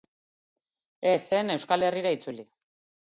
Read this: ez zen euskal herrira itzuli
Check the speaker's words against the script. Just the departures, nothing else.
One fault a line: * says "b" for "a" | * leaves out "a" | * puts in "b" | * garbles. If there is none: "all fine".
all fine